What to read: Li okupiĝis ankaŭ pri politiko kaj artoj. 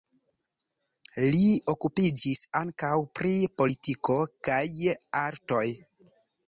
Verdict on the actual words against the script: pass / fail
pass